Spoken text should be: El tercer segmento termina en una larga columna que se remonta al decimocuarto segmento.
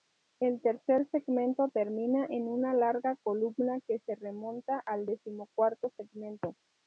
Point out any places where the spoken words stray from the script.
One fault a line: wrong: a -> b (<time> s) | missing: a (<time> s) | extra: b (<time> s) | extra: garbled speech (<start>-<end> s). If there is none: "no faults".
no faults